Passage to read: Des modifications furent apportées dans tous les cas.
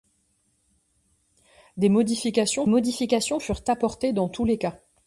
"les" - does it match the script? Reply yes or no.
yes